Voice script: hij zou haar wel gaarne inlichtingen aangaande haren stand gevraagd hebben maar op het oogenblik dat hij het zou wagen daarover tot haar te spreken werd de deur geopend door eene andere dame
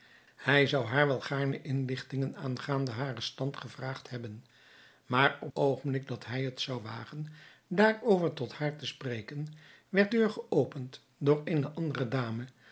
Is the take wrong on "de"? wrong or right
wrong